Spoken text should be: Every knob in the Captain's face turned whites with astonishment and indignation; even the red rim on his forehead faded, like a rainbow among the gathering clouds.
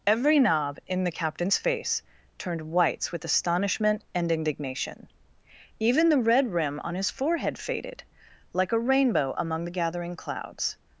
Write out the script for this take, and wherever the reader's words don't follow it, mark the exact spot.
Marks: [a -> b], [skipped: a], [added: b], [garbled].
Every knob in the Captain's face turned whites with astonishment and indignation; even the red rim on his forehead faded, like a rainbow among the gathering clouds.